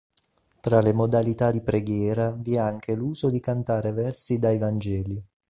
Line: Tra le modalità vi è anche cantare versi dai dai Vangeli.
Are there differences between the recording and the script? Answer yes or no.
yes